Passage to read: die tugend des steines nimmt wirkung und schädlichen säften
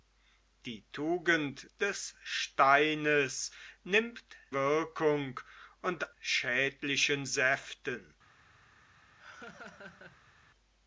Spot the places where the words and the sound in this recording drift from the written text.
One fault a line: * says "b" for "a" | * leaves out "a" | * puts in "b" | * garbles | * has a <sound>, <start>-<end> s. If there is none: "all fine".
* has a laugh, 9.2-10.4 s